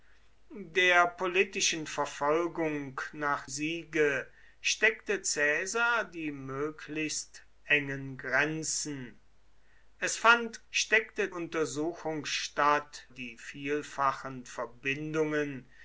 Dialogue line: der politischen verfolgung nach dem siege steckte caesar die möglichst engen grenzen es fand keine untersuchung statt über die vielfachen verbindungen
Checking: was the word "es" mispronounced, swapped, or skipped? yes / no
no